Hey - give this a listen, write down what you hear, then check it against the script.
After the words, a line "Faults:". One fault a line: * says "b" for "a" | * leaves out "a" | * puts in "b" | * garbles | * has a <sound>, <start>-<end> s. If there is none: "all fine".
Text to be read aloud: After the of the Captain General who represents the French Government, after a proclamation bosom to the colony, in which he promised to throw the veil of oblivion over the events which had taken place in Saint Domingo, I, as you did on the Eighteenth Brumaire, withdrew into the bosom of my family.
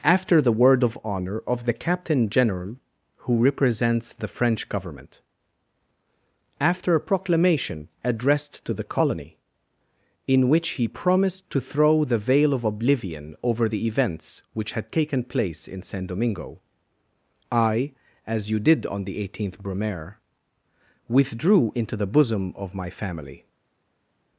After the word of honor of the Captain General who represents the French Government, after a proclamation addressed to the colony, in which he promised to throw the veil of oblivion over the events which had taken place in Saint Domingo, I, as you did on the Eighteenth Brumaire, withdrew into the bosom of my family.
Faults:
* puts in "word"
* puts in "honor of"
* says "addressed" for "bosom"